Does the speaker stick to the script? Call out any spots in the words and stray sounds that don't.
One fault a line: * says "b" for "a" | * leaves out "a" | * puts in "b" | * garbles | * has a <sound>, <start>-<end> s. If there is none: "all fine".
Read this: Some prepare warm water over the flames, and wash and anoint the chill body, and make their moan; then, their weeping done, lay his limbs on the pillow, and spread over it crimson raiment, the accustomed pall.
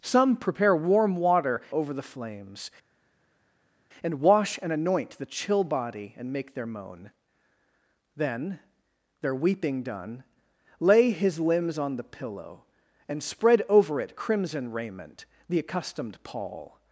all fine